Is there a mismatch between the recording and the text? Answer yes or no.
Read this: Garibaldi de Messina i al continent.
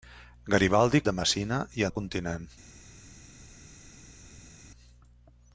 no